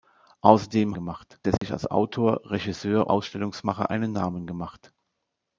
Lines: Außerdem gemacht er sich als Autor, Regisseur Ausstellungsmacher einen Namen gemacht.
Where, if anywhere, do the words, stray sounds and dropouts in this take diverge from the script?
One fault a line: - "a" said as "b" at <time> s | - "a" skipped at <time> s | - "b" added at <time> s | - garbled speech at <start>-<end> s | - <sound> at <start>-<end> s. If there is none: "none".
- dropout at 1.6-1.6 s